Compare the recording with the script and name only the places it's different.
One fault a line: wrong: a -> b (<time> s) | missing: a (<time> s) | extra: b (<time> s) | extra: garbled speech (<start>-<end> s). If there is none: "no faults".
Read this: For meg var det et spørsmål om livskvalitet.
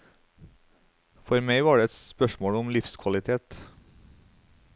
no faults